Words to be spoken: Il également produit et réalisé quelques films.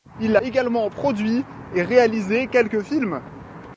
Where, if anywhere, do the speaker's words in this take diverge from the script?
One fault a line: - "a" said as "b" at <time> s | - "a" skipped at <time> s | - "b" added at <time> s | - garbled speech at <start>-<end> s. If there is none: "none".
none